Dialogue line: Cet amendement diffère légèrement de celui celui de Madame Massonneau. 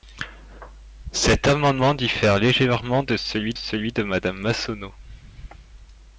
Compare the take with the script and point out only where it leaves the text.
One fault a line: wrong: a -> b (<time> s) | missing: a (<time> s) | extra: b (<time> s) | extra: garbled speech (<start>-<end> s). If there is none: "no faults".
no faults